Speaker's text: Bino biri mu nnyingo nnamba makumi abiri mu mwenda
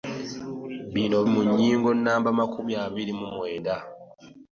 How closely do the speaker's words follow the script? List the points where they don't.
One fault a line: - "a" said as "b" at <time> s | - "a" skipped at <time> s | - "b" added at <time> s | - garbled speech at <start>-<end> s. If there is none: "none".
- "biri" skipped at 1.2 s